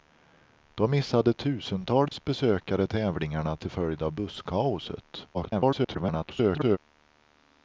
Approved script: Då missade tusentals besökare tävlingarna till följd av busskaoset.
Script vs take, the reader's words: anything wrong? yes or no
yes